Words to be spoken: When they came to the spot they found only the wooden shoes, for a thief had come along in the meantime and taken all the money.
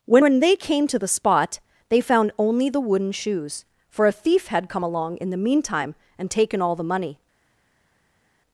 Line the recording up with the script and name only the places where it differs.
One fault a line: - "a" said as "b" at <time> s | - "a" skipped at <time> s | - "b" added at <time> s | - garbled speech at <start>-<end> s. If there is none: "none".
- "when" added at 0.2 s